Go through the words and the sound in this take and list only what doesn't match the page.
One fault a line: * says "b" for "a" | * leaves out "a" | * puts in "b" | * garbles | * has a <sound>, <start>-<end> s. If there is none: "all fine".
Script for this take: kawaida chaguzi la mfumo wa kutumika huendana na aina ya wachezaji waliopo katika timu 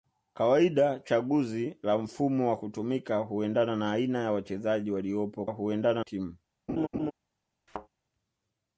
* says "huendana" for "katika"
* has a laugh, 6.7-7.1 s
* has a thud, 7.7-7.9 s